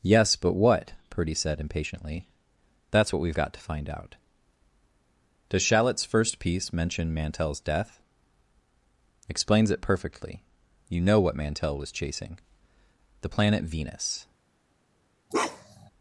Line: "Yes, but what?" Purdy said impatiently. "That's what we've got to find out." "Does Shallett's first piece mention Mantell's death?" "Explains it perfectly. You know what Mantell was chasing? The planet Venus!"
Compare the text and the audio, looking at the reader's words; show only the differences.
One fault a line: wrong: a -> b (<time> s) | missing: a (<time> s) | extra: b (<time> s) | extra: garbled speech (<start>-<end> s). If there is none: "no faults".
no faults